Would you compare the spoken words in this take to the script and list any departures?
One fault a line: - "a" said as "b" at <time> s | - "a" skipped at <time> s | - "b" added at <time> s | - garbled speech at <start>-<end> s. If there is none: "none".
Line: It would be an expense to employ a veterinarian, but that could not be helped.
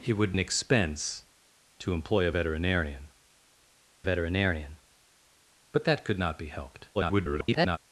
- "be" skipped at 0.3 s
- "veterinarian" added at 4.0 s
- garbled speech at 6.9-7.8 s